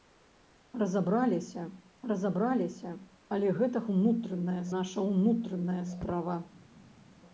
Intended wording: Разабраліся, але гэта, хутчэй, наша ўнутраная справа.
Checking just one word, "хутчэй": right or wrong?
wrong